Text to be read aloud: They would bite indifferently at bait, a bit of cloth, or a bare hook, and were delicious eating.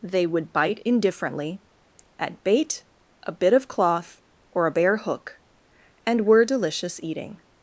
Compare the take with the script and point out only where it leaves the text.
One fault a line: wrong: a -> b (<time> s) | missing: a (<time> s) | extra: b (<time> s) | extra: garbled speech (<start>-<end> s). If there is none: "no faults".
no faults